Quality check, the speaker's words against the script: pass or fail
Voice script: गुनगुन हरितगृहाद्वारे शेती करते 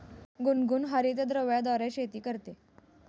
pass